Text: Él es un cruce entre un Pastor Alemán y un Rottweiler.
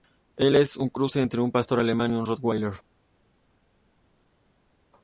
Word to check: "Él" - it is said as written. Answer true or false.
true